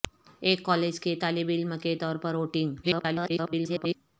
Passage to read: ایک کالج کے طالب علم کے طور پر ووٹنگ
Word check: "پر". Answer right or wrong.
right